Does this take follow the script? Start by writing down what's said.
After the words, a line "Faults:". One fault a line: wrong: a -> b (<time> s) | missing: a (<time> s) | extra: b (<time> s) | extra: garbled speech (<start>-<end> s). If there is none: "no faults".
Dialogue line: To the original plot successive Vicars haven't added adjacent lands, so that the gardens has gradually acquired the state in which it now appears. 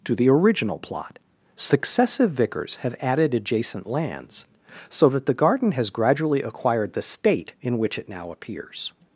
To the original plot successive Vicars have added adjacent lands, so that the garden has gradually acquired the state in which it now appears.
Faults:
wrong: haven't -> have (2.8 s)
wrong: gardens -> garden (5.3 s)